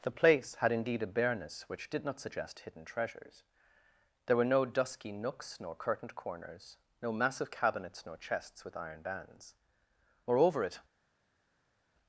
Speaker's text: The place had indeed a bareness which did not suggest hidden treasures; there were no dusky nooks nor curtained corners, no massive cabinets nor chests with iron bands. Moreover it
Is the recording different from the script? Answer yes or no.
no